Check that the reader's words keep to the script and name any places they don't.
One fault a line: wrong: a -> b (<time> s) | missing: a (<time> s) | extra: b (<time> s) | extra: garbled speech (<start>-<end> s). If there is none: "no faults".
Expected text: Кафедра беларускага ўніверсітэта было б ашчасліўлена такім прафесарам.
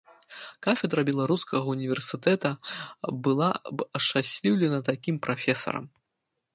wrong: было -> была (3.3 s)